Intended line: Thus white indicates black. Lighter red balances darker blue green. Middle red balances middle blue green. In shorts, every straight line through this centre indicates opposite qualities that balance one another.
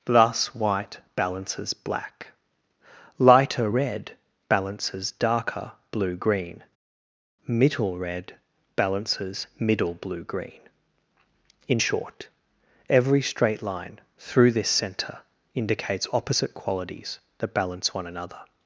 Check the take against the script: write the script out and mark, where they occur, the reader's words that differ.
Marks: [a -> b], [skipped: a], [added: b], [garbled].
Thus white [indicates -> balances] black. Lighter red balances darker blue green. Middle red balances middle blue green. In [shorts, -> short] every straight line through this centre indicates opposite qualities that balance one another.